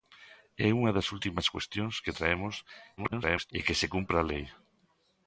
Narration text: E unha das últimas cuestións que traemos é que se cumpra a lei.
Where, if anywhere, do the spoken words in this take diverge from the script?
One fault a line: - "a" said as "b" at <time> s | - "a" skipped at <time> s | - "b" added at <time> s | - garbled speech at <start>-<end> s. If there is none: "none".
- garbled speech at 3.0-3.5 s